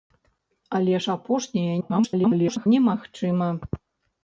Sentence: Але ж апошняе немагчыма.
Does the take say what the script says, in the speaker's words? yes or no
no